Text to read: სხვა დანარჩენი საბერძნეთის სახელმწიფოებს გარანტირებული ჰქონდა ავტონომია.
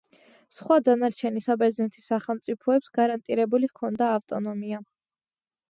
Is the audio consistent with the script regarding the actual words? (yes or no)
yes